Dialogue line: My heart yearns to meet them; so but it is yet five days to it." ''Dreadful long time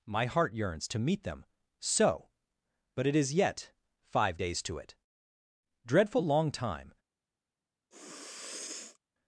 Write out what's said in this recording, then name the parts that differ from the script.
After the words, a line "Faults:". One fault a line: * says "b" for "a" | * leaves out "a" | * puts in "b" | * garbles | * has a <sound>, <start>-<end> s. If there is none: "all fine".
My heart yearns to meet them; so but it is yet five days to it." ''Dreadful long time
Faults:
* has a sniff, 7.9-9.0 s